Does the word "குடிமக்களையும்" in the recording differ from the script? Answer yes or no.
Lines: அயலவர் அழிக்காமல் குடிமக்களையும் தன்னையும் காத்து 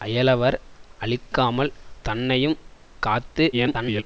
yes